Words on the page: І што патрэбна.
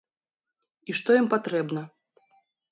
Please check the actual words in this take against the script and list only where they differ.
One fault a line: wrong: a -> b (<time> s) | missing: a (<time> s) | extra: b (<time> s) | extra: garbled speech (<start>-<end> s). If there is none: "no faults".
extra: ім (1.2 s)